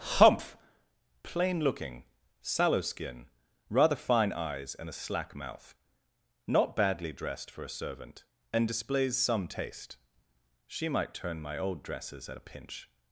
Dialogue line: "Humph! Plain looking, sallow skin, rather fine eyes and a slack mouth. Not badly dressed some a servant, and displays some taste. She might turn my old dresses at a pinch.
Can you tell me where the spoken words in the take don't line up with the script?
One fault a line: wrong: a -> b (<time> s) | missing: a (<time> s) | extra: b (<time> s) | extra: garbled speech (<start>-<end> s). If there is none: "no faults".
wrong: some -> for (7.5 s)